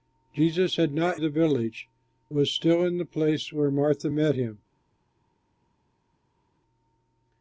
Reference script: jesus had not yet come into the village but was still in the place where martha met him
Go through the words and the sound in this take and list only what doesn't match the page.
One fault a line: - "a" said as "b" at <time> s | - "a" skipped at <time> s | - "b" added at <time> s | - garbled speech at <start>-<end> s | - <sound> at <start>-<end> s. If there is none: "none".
- "yet come into" skipped at 1.2 s
- "but" skipped at 1.9 s